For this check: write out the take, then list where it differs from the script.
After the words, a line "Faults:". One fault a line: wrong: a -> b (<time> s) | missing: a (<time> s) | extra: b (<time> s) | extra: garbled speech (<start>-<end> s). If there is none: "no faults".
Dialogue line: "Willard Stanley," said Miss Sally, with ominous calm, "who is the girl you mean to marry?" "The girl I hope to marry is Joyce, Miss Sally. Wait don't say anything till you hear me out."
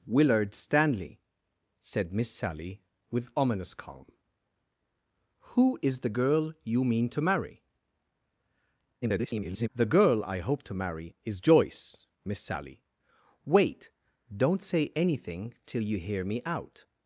"Willard Stanley," said Miss Sally, with ominous calm, "who is the girl you mean to marry?" [garbled] "The girl I hope to marry is Joyce, Miss Sally. Wait don't say anything till you hear me out."
Faults:
extra: garbled speech (9.0-9.7 s)